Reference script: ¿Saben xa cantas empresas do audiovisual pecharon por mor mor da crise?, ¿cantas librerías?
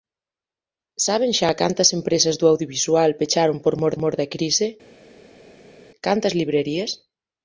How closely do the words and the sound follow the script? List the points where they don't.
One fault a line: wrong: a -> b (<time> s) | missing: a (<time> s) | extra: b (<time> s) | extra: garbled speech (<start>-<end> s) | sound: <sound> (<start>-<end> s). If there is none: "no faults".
no faults